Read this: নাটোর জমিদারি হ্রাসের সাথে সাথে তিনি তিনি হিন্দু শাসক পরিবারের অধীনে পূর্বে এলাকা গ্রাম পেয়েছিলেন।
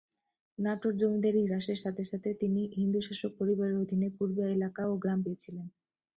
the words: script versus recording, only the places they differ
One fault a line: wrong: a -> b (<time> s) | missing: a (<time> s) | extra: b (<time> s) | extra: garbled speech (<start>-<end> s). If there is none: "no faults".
missing: তিনি (2.6 s)
extra: ও (4.9 s)